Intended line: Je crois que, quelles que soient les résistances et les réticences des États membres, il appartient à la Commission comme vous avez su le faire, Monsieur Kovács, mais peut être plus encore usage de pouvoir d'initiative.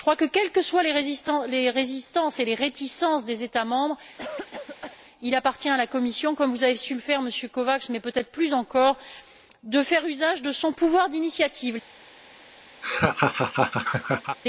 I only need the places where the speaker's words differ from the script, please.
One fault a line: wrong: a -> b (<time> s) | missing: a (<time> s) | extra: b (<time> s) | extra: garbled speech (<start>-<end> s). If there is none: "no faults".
extra: de faire (9.6 s)
extra: son (10.5 s)